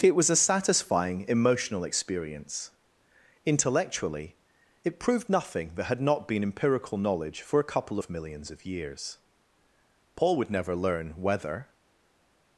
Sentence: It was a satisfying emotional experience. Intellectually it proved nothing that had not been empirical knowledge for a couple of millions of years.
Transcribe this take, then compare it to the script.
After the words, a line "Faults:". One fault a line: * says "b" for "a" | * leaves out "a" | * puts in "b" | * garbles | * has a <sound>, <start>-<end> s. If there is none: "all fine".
It was a satisfying emotional experience. Intellectually it proved nothing that had not been empirical knowledge for a couple of millions of years. Paul would never learn whether
Faults:
* puts in "Paul would never learn whether"